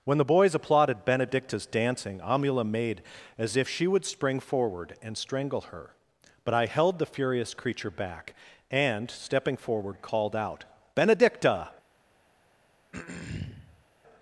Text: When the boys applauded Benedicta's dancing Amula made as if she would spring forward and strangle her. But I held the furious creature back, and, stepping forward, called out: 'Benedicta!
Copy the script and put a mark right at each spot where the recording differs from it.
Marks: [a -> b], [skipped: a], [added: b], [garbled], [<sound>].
When the boys applauded Benedicta's dancing Amula made as if she would spring forward and strangle her. But I held the furious creature back, and, stepping forward, called out: 'Benedicta! [throat clearing]